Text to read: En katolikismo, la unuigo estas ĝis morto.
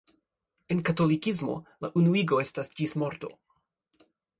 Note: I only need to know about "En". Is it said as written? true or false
true